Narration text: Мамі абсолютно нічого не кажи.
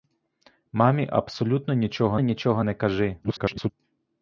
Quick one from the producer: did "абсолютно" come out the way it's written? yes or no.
yes